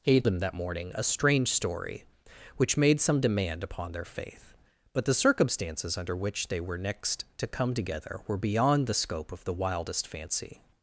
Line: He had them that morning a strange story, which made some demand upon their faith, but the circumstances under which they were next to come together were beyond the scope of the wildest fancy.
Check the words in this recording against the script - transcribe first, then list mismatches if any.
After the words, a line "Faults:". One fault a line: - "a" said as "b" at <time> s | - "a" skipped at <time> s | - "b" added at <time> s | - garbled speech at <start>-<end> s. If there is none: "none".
He had them that morning a strange story, which made some demand upon their faith, but the circumstances under which they were next to come together were beyond the scope of the wildest fancy.
Faults:
none